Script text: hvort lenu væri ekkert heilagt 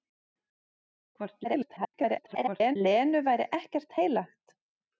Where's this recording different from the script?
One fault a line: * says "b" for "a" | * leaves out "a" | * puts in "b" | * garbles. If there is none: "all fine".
* garbles